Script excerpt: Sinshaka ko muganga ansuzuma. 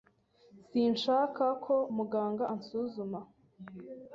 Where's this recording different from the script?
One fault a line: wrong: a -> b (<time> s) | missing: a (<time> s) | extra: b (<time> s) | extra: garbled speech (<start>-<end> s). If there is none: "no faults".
no faults